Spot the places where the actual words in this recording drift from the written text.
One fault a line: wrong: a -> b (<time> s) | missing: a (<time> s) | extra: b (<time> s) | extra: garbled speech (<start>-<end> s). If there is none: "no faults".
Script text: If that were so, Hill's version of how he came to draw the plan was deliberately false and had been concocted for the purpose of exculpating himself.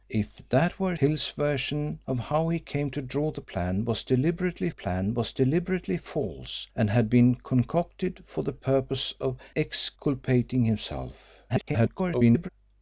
missing: so (1.0 s)
extra: plan was deliberately (4.7 s)
extra: garbled speech (11.5-12.5 s)